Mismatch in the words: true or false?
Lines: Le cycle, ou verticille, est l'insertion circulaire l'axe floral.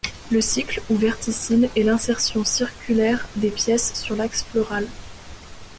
true